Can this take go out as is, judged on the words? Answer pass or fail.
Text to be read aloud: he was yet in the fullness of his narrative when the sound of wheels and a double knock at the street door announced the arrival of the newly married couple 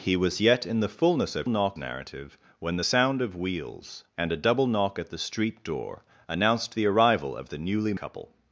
fail